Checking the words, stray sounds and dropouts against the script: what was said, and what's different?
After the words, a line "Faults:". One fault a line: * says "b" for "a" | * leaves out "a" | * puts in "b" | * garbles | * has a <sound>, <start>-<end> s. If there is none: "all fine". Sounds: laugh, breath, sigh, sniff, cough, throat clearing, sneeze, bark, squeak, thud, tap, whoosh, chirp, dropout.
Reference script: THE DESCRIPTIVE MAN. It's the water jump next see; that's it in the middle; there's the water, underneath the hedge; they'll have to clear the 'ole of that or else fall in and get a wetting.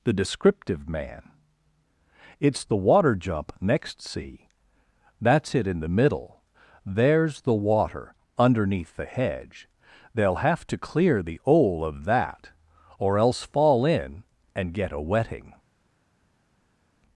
THE DESCRIPTIVE MAN. It's the water jump next see; that's it in the middle; there's the water, underneath the hedge; they'll have to clear the 'ole of that or else fall in and get a wetting.
Faults:
all fine